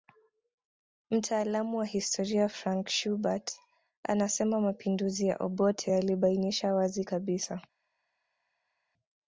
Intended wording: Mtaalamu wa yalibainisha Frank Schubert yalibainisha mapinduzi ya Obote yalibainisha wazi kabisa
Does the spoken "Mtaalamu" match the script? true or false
true